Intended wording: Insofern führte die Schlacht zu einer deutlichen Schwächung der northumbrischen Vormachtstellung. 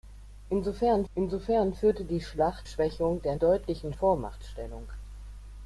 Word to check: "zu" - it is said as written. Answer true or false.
false